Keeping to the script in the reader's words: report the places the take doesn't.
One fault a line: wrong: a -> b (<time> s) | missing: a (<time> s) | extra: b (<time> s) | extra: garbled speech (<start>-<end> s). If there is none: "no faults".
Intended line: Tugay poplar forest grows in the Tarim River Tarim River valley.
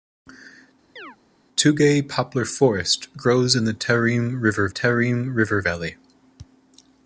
no faults